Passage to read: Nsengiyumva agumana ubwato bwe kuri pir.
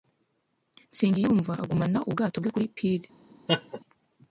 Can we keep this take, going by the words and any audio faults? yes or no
no